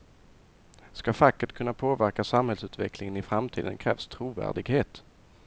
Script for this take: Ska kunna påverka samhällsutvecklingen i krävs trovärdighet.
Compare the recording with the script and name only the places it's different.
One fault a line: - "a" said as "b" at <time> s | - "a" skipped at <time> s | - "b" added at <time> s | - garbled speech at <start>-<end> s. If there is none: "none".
- "facket" added at 1.1 s
- "framtiden" added at 3.2 s